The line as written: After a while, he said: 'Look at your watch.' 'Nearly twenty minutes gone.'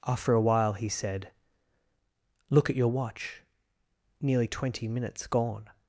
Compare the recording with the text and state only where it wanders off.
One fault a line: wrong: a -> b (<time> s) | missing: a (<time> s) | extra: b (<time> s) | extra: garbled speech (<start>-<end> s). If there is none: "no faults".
no faults